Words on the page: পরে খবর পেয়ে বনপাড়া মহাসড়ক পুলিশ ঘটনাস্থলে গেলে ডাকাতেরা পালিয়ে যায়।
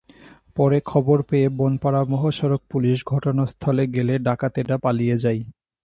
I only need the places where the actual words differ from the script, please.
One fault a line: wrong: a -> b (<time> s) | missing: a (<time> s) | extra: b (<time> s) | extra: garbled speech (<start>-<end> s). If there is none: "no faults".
no faults